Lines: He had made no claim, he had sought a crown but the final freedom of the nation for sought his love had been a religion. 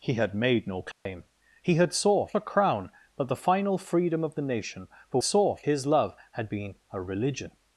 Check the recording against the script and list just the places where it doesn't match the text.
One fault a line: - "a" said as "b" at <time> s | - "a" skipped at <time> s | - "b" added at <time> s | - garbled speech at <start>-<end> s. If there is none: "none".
none